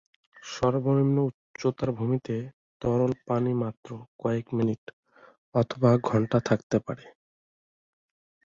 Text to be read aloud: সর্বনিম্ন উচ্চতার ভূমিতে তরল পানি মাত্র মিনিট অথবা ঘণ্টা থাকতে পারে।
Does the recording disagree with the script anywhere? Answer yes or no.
yes